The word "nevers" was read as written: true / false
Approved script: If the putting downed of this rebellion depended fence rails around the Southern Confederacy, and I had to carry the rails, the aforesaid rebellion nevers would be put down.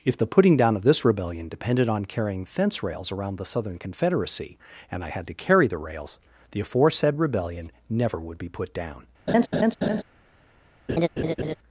false